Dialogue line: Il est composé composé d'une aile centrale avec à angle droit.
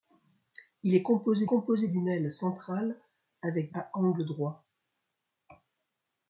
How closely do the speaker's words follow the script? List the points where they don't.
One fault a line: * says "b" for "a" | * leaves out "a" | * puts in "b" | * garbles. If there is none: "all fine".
all fine